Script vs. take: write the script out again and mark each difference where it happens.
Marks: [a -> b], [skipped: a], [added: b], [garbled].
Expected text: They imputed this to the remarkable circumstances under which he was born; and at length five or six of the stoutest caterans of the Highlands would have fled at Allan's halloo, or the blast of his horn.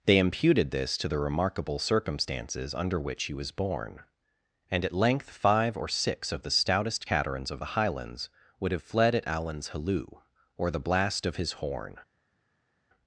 They imputed this to the remarkable circumstances under which he was born; and at length five or six of the stoutest caterans of the Highlands would have fled at Allan's halloo, or the blast of his horn.